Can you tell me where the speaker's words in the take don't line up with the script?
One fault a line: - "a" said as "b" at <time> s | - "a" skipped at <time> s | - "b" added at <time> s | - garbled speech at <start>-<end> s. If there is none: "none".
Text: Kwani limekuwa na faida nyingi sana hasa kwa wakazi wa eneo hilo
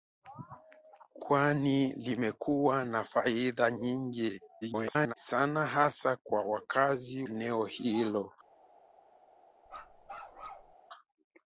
- garbled speech at 4.6-5.1 s
- "wa" skipped at 7.2 s